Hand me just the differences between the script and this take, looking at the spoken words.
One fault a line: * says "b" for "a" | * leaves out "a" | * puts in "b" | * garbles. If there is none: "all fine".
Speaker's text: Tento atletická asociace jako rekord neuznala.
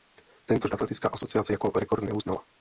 all fine